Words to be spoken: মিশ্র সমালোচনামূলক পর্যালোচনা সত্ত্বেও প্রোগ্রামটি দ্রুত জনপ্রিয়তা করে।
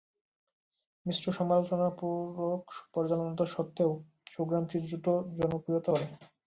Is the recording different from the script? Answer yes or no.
no